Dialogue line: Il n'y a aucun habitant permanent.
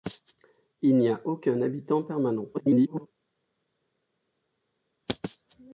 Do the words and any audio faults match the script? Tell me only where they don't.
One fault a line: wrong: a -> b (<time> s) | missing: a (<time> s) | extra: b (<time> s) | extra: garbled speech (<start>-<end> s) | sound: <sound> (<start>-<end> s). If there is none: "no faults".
extra: garbled speech (2.5-3.1 s)